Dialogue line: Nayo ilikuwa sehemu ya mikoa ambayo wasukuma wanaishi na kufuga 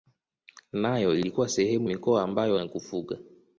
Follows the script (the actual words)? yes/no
no